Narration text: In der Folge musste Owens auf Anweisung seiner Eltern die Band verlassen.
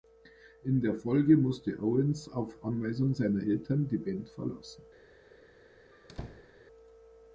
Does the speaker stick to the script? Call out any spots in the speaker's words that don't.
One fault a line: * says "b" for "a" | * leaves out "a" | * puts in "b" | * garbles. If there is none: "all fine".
all fine